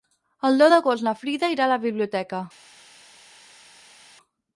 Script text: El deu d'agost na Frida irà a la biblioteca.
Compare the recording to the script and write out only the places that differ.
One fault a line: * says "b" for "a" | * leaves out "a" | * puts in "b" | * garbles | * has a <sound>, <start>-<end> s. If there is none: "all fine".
all fine